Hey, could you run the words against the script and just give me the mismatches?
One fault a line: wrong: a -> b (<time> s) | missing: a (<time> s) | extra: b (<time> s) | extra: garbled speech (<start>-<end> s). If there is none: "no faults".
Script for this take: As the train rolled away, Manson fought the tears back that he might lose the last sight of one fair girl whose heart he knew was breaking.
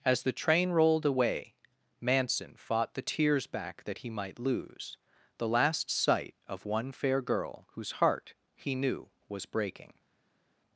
no faults